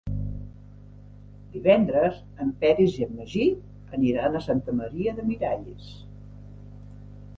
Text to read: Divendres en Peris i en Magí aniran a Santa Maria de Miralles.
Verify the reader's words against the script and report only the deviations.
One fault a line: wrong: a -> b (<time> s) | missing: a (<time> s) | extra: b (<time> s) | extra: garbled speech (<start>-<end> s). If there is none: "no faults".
no faults